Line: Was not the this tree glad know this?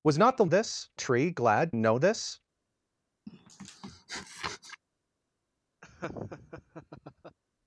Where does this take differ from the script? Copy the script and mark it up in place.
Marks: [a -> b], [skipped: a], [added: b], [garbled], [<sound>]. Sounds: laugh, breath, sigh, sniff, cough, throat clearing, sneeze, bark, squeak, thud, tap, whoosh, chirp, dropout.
Was not the this tree glad know this? [sniff] [laugh]